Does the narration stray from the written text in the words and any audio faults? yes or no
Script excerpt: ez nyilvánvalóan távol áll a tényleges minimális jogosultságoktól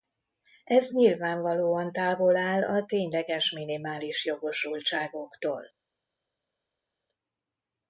no